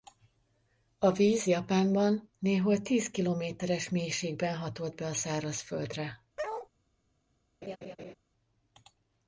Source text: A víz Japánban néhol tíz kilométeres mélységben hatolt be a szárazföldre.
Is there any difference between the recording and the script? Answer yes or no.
no